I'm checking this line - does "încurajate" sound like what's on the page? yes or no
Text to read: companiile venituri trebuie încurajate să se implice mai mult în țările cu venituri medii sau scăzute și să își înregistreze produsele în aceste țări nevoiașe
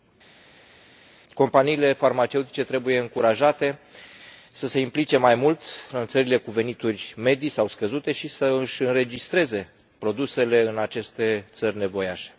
yes